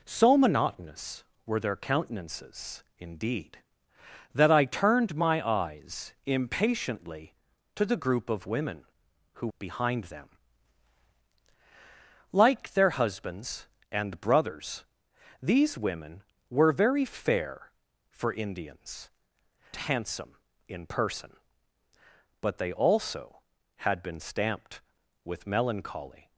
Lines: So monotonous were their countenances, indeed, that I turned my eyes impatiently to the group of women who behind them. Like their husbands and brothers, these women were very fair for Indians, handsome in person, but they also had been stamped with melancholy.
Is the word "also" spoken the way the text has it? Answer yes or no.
yes